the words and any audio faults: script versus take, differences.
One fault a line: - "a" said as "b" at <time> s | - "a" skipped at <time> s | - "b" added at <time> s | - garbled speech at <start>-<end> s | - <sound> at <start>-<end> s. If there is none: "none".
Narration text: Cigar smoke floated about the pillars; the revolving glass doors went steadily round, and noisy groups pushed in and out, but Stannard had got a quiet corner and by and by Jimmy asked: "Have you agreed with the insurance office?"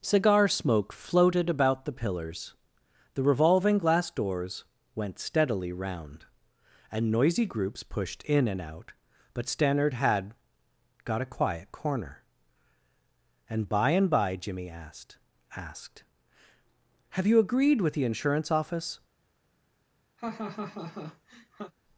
- "asked" added at 15.5 s
- laugh at 20.2-21.7 s